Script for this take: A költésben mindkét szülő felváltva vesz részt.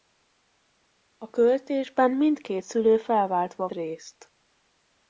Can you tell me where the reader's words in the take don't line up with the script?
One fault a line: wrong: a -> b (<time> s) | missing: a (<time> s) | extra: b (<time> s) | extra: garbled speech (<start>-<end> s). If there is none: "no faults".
missing: vesz (3.7 s)